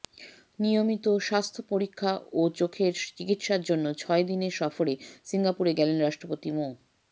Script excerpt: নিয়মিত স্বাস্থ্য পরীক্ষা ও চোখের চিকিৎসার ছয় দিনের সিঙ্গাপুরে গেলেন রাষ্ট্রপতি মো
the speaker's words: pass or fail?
fail